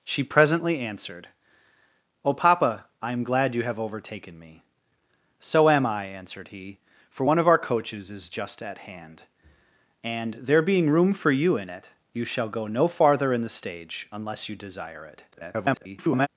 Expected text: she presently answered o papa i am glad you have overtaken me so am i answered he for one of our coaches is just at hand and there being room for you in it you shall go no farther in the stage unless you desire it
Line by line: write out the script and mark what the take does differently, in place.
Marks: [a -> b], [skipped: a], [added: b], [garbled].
she presently answered o papa i am glad you have overtaken me so am i answered he for one of our coaches is just at hand and there being room for you in it you shall go no farther in the stage unless you desire it [garbled]